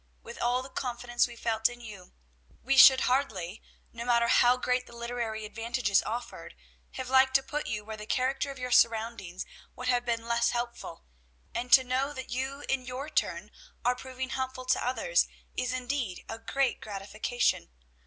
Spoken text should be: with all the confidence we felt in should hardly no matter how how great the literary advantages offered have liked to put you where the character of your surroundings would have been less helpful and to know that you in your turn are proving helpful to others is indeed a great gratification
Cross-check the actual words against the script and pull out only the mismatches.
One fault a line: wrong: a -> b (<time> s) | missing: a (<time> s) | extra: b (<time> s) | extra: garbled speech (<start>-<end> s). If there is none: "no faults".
extra: you we (1.8 s)
missing: how (4.6 s)